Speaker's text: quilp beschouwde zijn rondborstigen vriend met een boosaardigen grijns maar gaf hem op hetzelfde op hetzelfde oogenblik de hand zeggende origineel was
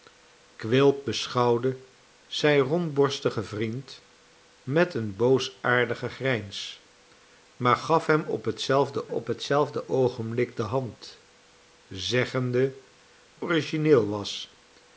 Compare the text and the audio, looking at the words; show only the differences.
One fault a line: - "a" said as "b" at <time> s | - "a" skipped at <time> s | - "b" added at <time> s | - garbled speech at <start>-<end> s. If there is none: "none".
none